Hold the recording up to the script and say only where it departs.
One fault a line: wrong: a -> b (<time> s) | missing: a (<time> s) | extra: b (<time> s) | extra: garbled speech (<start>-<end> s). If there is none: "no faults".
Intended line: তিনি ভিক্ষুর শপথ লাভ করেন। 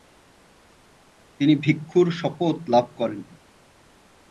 no faults